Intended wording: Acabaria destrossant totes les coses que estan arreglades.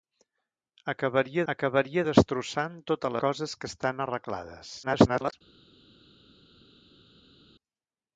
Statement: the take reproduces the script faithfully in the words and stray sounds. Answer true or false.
false